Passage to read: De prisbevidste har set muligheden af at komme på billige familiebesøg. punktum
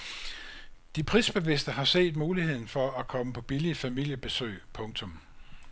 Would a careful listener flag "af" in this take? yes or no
yes